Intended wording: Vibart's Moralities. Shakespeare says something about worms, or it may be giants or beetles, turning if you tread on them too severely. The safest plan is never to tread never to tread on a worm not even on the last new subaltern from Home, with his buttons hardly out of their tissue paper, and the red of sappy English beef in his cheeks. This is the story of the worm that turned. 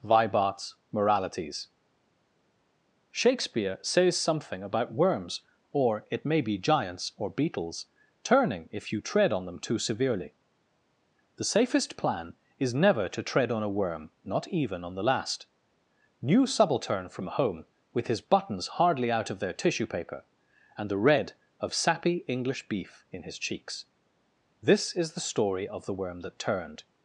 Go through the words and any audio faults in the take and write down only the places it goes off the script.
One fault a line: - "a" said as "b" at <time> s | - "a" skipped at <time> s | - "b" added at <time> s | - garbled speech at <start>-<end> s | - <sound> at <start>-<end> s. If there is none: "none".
- "never to tread" skipped at 13.5 s